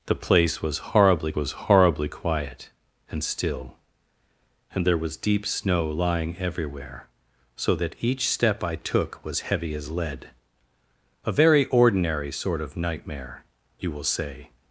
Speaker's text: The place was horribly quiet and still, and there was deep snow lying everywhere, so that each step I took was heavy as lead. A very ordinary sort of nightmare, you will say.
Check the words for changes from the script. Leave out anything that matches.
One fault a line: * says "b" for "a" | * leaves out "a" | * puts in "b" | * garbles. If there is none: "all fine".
* puts in "was horribly"